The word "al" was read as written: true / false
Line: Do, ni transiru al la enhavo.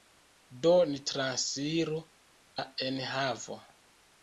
false